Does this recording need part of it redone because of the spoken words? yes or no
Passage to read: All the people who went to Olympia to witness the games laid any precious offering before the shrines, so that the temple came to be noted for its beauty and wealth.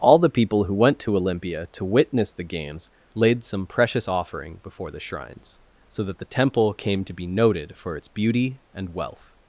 yes